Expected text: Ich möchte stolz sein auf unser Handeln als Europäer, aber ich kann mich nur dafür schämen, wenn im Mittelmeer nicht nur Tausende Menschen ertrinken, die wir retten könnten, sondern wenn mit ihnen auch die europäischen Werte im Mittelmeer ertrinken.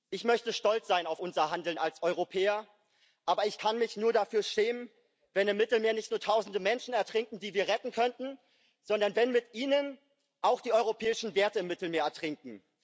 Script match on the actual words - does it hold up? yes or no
yes